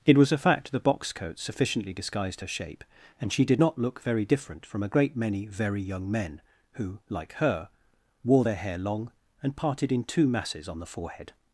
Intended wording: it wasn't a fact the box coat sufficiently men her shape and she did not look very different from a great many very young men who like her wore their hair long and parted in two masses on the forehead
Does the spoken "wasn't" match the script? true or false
false